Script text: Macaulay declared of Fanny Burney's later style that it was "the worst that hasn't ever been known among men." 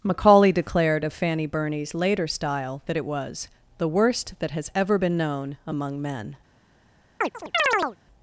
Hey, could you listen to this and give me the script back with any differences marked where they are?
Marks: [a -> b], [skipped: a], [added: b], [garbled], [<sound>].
Macaulay declared of Fanny Burney's later style that it was "the worst that [hasn't -> has] ever been known among men." [chirp]